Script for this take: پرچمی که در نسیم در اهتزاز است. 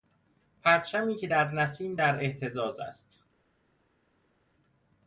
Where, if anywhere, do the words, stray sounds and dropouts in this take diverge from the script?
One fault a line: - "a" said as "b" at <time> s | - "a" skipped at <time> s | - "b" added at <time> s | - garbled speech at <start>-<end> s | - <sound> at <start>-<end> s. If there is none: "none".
none